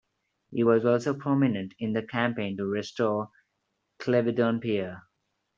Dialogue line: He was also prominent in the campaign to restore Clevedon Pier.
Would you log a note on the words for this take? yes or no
no